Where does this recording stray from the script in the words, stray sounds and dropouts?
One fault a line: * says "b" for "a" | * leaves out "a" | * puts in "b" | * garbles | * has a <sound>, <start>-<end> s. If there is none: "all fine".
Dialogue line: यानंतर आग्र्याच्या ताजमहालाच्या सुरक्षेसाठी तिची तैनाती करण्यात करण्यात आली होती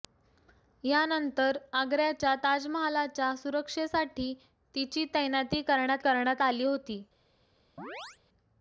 * has a chirp, 7.8-8.2 s